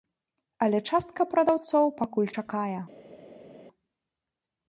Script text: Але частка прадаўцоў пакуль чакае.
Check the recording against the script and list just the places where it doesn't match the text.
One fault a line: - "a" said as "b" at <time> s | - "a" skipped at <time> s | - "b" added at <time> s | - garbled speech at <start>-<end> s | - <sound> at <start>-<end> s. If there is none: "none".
none